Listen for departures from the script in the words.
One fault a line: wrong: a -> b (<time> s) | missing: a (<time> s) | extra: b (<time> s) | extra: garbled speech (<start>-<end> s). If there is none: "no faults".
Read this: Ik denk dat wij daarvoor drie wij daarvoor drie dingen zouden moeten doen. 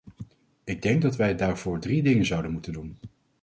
missing: wij daarvoor drie (2.0 s)